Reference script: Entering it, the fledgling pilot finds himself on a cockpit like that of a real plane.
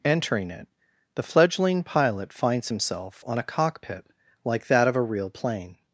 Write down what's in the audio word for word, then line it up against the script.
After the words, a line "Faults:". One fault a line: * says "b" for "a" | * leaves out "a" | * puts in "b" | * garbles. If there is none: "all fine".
Entering it, the fledgling pilot finds himself on a cockpit like that of a real plane.
Faults:
all fine